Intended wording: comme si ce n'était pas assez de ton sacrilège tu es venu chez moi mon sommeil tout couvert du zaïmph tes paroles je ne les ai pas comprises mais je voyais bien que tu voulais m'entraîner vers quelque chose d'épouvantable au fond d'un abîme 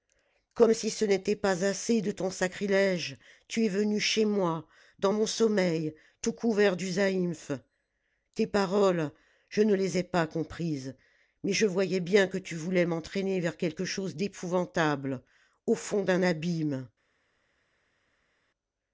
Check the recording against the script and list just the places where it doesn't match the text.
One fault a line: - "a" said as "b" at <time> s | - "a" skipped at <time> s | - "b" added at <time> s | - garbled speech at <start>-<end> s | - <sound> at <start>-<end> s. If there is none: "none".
- "dans" added at 5.0 s